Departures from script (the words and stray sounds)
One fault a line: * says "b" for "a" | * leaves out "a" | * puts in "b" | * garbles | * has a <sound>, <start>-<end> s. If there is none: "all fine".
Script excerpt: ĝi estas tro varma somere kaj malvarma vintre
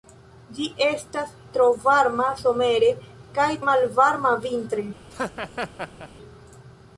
* has a laugh, 5.1-6.1 s